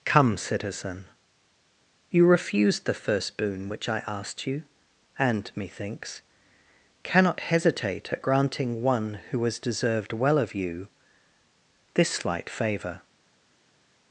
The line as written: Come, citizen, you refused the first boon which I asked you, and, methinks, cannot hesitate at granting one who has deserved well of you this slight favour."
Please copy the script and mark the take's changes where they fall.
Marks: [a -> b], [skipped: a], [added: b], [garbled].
Come, citizen, you refused the first boon which I asked you, and, methinks, cannot hesitate at granting one who has deserved well of you this slight favour."